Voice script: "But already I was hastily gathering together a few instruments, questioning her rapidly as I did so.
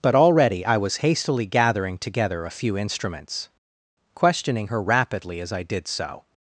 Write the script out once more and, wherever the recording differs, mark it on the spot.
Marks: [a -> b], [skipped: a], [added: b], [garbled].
"But already I was hastily gathering together a few instruments, questioning her rapidly as I did so.